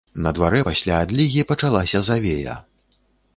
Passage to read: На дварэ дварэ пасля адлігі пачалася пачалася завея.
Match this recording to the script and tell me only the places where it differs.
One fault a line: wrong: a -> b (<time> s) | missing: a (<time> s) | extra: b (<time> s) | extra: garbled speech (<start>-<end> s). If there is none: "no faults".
missing: дварэ (0.6 s)
missing: пачалася (2.0 s)